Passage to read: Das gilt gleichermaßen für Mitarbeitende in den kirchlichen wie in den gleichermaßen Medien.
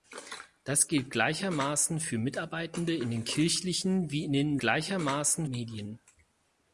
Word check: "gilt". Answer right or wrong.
right